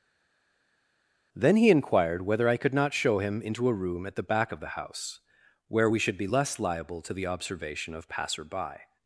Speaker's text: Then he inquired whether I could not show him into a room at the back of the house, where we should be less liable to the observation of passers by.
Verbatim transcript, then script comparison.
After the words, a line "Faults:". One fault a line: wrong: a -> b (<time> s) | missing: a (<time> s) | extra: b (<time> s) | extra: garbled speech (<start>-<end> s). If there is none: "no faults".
Then he inquired whether I could not show him into a room at the back of the house, where we should be less liable to the observation of passer by.
Faults:
wrong: passers -> passer (8.1 s)